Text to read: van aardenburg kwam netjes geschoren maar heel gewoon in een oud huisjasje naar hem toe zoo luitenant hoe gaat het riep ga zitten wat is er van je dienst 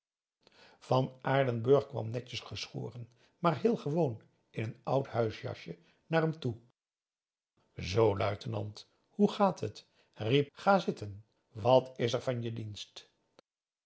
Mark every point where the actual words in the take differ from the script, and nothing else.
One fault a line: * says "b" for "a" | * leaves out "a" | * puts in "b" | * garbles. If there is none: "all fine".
all fine